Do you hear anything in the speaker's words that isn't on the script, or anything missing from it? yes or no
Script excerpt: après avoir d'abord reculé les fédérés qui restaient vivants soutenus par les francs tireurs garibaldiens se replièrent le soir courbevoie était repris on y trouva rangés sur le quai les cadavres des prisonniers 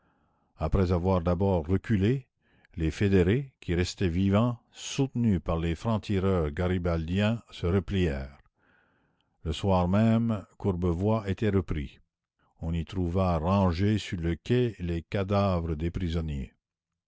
yes